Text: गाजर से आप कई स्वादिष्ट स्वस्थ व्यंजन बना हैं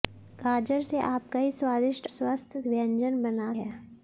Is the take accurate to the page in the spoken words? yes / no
yes